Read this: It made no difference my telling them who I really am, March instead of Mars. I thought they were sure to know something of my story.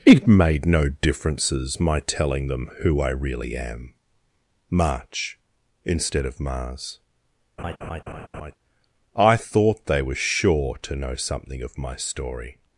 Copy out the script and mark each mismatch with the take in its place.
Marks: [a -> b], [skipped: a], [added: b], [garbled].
It made no [difference -> differences] my telling them who I really am, March instead of Mars. I thought they were sure to know something of my story.